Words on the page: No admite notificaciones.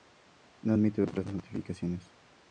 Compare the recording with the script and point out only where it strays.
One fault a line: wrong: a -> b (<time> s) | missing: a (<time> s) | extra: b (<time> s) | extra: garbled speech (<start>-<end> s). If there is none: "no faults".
extra: otras (1.0 s)